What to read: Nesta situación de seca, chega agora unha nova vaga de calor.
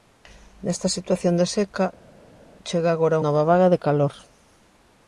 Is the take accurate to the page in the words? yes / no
no